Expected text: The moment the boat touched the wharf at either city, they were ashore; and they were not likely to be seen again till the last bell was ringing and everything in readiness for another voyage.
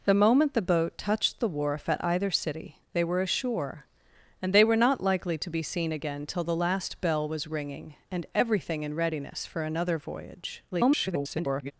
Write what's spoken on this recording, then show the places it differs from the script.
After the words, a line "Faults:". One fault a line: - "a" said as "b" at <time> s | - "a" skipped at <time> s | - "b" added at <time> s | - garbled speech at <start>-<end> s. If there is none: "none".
The moment the boat touched the wharf at either city, they were ashore; and they were not likely to be seen again till the last bell was ringing and everything in readiness for another voyage. [garbled]
Faults:
- garbled speech at 10.7-11.7 s